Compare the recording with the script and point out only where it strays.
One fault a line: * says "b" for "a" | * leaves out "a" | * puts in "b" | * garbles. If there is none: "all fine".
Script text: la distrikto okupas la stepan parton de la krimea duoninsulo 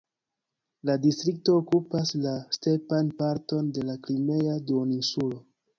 all fine